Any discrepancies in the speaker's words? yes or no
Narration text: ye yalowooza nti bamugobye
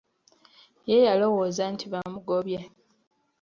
no